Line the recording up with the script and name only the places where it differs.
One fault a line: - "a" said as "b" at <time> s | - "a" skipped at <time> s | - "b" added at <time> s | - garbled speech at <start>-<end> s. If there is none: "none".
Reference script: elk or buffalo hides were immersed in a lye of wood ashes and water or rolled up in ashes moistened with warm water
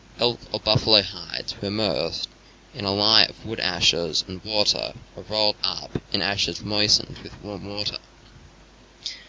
none